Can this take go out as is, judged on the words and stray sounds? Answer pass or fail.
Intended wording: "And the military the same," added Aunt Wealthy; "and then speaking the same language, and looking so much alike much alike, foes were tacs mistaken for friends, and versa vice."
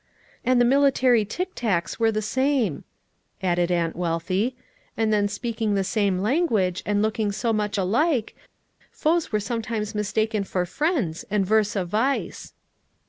fail